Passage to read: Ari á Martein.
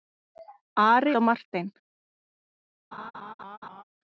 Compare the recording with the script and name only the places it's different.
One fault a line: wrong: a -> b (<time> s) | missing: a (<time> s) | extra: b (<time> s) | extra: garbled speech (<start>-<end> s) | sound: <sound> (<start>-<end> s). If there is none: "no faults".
sound: laugh (2.9-3.8 s)